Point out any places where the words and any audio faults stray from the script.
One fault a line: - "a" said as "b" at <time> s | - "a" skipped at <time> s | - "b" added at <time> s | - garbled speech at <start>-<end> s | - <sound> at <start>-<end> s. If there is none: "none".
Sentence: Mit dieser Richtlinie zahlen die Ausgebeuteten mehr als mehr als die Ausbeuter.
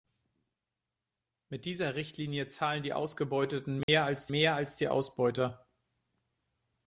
- dropout at 3.8-3.9 s